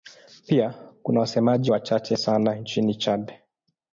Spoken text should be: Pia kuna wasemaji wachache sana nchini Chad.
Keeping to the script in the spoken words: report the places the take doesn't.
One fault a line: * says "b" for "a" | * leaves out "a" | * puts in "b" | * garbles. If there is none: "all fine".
all fine